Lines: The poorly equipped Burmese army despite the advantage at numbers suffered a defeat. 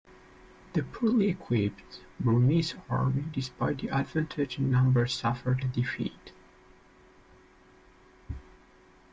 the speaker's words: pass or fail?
fail